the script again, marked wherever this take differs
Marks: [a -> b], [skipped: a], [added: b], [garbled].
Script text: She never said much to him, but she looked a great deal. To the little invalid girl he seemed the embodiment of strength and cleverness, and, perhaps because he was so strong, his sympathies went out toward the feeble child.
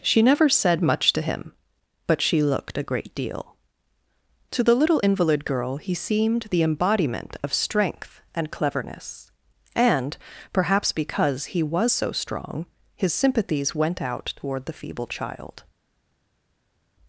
She never said much to him, but she looked a great deal. To the little invalid girl he seemed the embodiment of strength and cleverness, and, perhaps because he was so strong, his sympathies went out toward the feeble child.